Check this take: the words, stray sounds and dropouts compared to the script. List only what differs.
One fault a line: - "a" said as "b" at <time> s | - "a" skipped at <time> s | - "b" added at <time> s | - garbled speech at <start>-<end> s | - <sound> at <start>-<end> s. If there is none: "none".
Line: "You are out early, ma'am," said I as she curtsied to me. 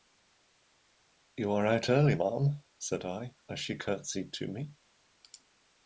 none